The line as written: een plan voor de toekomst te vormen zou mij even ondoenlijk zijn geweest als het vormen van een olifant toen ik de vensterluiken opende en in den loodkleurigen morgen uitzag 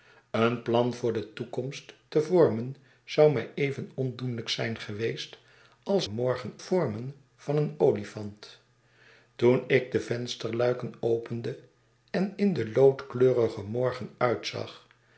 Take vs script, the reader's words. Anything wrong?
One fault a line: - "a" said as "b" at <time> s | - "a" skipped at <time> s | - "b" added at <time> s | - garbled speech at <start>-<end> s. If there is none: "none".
- "het" said as "morgen" at 6.1 s